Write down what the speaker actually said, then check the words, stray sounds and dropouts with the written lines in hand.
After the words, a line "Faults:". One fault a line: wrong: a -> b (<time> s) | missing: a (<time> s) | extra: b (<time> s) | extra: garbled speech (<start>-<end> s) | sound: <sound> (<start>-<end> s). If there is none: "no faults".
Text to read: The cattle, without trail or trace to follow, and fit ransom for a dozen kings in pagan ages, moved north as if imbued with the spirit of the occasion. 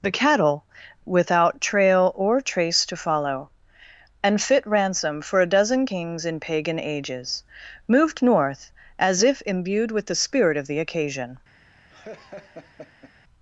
The cattle, without trail or trace to follow, and fit ransom for a dozen kings in pagan ages, moved north as if imbued with the spirit of the occasion.
Faults:
sound: laugh (11.9-13.1 s)